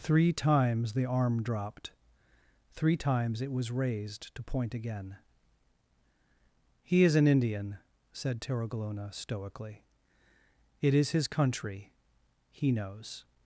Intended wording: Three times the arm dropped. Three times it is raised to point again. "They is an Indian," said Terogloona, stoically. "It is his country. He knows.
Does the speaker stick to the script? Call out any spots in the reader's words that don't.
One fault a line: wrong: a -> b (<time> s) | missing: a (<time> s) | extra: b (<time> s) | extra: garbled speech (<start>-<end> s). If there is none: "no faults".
wrong: is -> was (3.5 s)
wrong: They -> He (6.8 s)